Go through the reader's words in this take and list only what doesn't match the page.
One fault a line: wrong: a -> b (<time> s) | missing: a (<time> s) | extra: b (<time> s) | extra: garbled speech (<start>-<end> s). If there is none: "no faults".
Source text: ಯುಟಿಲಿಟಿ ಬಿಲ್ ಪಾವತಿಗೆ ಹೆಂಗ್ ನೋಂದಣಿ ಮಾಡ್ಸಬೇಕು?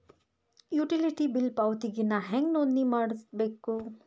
extra: ನಾ (2.0 s)